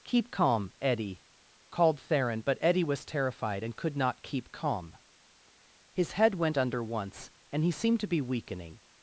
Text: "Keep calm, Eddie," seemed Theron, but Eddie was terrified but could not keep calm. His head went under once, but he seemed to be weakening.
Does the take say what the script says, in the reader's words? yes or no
no